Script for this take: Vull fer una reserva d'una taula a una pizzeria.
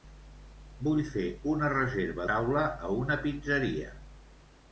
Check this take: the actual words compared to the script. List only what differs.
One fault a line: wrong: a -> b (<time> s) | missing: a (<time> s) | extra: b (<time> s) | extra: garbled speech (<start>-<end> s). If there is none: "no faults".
missing: d'una (2.3 s)